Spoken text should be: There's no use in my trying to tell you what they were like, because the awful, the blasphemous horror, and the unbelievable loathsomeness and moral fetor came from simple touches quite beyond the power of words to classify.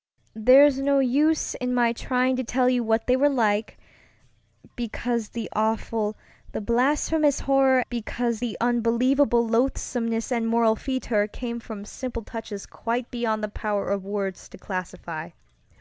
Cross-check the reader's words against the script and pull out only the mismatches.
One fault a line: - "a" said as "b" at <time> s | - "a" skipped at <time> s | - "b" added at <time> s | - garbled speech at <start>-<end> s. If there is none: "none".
- "and" said as "because" at 7.9 s